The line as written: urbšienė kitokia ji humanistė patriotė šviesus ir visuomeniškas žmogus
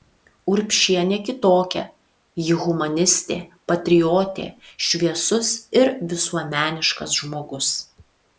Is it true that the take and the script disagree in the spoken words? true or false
false